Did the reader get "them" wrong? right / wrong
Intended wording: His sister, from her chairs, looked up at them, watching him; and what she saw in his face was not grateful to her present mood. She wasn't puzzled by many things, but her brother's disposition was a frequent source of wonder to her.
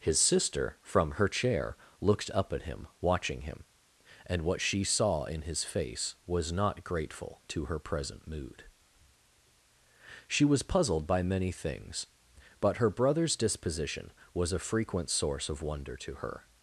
wrong